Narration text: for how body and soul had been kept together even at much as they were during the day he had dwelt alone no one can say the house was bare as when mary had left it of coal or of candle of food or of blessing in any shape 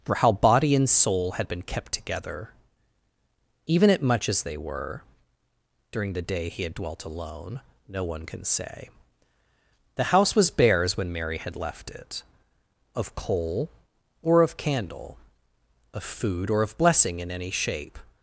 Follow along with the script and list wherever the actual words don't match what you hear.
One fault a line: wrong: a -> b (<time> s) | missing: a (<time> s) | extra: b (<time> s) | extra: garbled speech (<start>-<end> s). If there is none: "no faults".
no faults